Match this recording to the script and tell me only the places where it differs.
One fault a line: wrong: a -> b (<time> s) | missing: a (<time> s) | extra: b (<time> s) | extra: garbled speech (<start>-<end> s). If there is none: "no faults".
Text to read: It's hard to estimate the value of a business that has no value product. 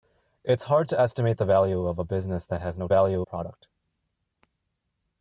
no faults